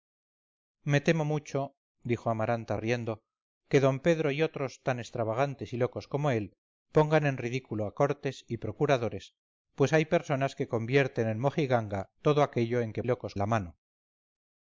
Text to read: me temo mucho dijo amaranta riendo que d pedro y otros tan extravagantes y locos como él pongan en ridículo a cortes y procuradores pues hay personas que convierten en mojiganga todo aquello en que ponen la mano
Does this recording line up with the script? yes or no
no